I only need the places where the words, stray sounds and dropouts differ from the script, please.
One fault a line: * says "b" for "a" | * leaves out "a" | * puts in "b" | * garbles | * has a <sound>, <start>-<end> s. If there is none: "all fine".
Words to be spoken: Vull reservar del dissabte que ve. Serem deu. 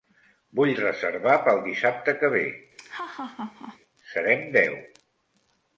* says "pel" for "del"
* has a laugh, 2.8-3.8 s